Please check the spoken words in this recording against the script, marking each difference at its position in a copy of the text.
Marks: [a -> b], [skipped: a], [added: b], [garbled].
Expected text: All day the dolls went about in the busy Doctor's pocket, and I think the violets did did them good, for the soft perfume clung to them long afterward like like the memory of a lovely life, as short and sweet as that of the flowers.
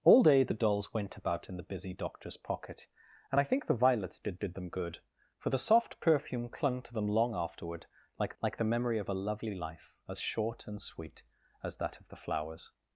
All day the dolls went about in the busy Doctor's pocket, and I think the violets did did them good, for the soft perfume clung to them long afterward like like the memory of a lovely life, as short and sweet as that of the flowers.